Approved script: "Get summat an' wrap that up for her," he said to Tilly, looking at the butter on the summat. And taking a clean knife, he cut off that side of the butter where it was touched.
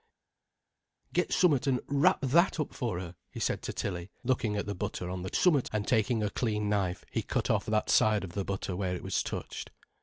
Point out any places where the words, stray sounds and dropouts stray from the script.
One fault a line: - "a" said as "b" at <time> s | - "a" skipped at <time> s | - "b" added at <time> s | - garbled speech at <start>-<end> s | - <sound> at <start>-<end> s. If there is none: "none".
none